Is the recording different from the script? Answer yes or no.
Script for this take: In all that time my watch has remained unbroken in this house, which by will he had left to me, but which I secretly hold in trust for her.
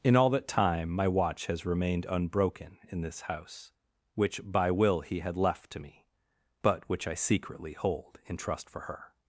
no